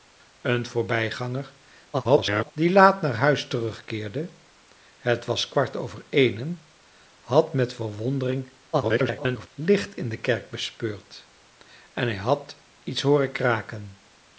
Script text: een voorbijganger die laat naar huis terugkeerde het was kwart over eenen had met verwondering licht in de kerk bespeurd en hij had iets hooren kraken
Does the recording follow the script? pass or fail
fail